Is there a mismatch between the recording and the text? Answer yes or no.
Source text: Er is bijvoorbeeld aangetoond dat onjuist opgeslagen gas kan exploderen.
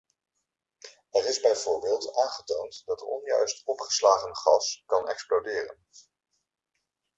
no